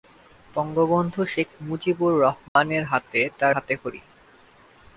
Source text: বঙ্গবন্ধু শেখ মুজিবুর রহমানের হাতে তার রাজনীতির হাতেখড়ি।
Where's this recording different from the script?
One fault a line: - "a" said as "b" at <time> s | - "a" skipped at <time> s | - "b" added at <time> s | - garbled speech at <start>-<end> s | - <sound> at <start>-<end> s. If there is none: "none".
- dropout at 2.5-2.6 s
- "রাজনীতির" skipped at 3.5 s